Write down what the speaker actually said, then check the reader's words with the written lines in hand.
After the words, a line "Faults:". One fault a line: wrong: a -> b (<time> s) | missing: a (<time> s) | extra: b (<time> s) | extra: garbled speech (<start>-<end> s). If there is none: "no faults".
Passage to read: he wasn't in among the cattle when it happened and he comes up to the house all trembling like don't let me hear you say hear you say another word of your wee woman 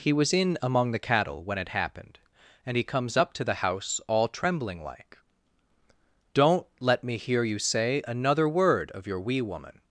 he was in among the cattle when it happened and he comes up to the house all trembling like don't let me hear you say another word of your wee woman
Faults:
wrong: wasn't -> was (0.1 s)
missing: hear you say (8.0 s)